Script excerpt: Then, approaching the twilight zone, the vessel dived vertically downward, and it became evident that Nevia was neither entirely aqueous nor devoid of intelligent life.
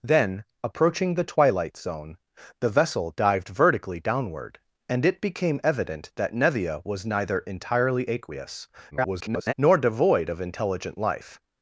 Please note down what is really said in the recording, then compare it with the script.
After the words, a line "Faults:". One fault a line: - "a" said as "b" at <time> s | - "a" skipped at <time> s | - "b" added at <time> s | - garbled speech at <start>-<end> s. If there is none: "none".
Then, approaching the twilight zone, the vessel dived vertically downward, and it became evident that Nevia was neither entirely aqueous [garbled] nor devoid of intelligent life.
Faults:
- garbled speech at 8.9-9.5 s